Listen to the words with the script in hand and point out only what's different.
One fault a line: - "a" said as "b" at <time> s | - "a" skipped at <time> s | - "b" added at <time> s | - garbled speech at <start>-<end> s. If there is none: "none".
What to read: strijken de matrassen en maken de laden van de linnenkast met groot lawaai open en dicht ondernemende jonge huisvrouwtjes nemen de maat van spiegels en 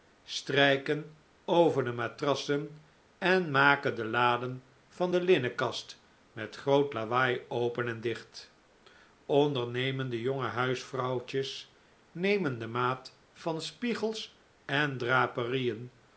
- "over" added at 1.4 s